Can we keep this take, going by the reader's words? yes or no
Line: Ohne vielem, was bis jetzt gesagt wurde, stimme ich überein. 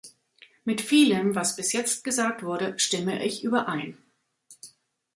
no